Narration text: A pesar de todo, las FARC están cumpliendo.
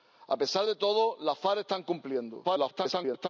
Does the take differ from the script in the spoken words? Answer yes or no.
yes